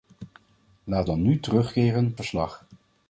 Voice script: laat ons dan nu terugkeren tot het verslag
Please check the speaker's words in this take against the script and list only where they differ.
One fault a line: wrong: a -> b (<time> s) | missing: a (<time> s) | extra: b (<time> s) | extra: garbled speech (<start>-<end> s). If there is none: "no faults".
missing: ons (1.1 s)
missing: tot het (2.2 s)